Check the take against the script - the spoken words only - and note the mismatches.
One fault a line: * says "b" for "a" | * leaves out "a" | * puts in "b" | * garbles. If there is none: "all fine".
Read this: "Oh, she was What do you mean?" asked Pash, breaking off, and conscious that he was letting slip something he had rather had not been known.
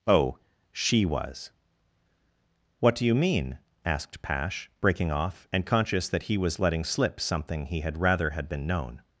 * leaves out "not"